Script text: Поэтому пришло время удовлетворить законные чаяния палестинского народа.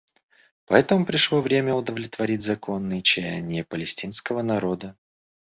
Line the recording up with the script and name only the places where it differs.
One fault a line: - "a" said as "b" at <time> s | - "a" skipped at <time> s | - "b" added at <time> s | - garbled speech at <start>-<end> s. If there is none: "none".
none